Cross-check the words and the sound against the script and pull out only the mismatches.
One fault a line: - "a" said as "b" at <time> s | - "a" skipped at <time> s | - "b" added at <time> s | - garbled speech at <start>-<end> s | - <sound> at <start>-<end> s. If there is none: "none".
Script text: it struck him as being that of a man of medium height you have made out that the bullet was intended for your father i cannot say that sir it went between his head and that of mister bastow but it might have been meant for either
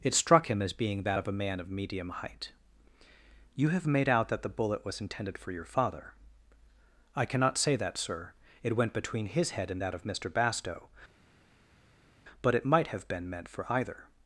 none